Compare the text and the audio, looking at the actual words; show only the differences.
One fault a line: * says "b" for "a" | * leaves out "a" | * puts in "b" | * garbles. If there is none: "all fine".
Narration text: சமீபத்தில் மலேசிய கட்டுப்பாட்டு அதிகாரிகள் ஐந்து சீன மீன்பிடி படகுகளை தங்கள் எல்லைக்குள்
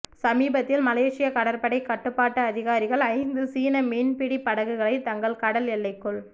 * puts in "கடற்படை"
* puts in "கடல்"